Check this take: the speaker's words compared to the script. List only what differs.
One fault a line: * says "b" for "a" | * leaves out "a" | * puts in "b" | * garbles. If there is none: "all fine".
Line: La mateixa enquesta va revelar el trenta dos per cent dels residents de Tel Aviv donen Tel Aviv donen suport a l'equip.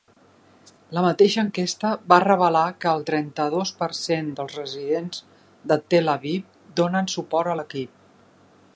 * puts in "que"
* leaves out "Tel Aviv donen"